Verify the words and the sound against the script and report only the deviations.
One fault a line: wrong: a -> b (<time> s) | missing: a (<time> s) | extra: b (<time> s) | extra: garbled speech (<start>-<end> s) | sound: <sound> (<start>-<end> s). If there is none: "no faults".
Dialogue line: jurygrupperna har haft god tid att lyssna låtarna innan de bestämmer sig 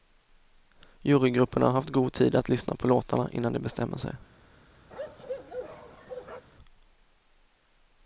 extra: på (2.8 s)
sound: bark (4.9-6.4 s)